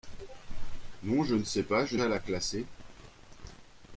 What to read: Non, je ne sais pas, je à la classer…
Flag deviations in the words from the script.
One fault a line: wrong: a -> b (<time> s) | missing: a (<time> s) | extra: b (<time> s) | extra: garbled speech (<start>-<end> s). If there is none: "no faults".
no faults